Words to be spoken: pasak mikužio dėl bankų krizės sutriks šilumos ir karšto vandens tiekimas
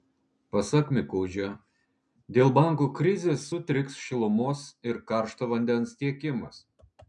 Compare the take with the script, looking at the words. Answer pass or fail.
pass